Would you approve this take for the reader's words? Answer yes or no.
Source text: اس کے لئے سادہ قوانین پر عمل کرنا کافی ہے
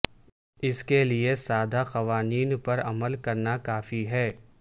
yes